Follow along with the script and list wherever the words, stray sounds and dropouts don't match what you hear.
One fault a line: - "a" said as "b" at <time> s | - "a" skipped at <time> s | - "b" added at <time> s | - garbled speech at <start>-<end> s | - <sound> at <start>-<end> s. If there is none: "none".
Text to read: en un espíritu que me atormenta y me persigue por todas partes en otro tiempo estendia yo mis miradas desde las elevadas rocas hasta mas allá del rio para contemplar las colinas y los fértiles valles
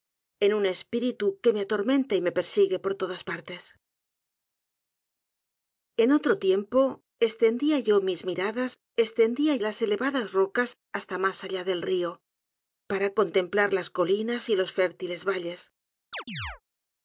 - "desde" said as "estendia" at 9.0 s
- chirp at 16.1-16.6 s